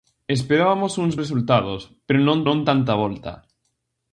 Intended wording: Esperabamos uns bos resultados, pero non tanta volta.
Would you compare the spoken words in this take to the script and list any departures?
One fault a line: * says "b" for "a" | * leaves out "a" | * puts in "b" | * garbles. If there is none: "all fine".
* leaves out "bos"
* puts in "non"